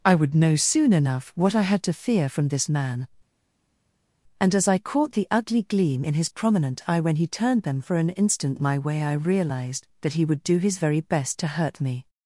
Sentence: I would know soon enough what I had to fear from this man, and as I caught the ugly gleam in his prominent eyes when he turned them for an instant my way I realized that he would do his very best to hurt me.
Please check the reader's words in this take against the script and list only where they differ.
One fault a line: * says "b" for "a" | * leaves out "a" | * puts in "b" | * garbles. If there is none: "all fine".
* says "eye" for "eyes"